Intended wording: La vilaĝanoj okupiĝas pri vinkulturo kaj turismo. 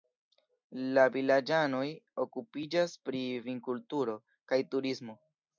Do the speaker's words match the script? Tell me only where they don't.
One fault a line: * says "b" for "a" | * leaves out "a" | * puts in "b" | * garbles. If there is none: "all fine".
all fine